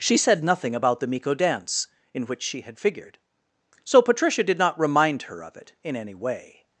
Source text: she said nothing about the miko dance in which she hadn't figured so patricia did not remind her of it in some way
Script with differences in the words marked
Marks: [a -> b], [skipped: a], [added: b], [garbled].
she said nothing about the miko dance in which she [hadn't -> had] figured so patricia did not remind her of it in [some -> any] way